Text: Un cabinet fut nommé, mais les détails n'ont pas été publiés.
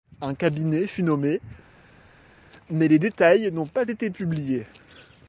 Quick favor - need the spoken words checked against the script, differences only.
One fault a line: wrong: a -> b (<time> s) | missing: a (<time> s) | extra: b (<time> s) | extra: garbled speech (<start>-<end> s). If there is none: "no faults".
no faults